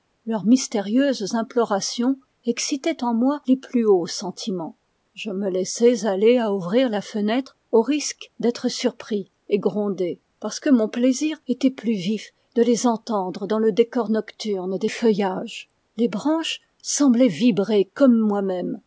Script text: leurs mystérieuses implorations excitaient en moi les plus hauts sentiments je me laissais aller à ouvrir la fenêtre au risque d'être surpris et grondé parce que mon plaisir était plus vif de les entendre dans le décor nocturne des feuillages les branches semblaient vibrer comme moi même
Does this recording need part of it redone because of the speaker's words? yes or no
no